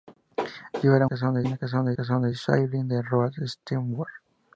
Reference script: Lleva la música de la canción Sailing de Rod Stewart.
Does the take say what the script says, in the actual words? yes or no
no